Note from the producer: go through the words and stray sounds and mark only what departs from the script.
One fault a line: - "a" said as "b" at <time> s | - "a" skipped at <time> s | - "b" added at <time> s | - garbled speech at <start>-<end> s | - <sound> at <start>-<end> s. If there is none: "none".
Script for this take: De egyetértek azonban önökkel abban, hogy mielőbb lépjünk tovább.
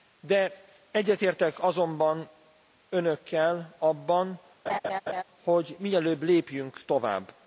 - laugh at 4.7-5.2 s